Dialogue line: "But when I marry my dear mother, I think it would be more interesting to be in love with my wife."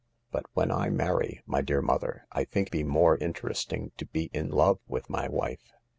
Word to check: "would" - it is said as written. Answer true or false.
false